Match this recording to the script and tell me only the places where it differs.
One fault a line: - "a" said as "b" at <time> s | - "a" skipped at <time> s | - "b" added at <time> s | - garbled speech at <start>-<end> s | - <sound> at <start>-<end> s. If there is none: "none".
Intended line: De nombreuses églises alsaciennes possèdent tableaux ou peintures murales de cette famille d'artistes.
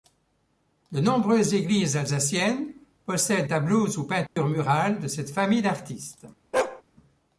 - dropout at 4.3-4.4 s
- bark at 6.5-6.8 s